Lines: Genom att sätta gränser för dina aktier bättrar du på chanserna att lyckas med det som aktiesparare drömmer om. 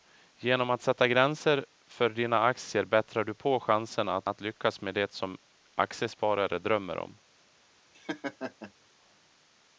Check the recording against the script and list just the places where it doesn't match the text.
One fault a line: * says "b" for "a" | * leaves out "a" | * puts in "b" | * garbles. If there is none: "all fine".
* puts in "att"